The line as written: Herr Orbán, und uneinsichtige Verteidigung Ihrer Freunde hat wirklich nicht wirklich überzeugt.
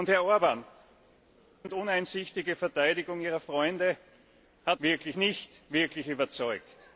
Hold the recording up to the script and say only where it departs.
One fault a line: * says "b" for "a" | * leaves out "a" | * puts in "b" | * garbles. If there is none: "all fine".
all fine